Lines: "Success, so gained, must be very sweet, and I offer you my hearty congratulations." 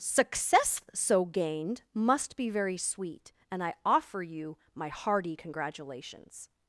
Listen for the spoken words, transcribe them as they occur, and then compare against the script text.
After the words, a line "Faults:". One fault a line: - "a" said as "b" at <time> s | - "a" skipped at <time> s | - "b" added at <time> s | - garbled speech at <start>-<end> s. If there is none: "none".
"Success, so gained, must be very sweet, and I offer you my hearty congratulations."
Faults:
none